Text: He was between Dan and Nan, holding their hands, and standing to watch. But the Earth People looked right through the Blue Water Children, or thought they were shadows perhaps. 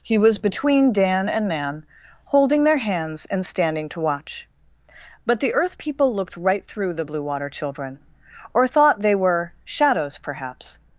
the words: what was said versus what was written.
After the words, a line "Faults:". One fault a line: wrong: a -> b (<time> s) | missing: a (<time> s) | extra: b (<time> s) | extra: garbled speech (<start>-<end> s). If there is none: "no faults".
He was between Dan and Nan, holding their hands, and standing to watch. But the Earth People looked right through the Blue Water Children, or thought they were shadows perhaps.
Faults:
no faults